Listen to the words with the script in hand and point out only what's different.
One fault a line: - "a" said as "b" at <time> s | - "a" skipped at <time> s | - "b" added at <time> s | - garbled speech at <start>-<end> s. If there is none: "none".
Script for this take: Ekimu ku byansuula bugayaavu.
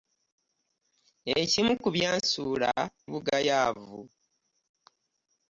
none